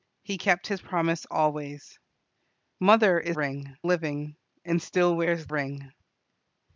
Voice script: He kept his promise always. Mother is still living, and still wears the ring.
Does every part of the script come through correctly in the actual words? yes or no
no